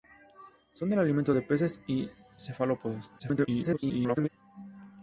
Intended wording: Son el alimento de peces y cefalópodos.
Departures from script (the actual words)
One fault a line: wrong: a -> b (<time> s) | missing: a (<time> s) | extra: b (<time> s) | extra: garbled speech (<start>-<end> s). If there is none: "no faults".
extra: garbled speech (3.2-4.3 s)